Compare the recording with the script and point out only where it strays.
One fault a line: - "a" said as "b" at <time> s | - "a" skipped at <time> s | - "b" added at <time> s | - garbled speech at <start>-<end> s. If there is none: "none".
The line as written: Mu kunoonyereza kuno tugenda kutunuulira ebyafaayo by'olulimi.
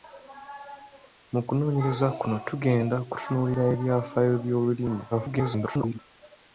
- garbled speech at 5.1-6.0 s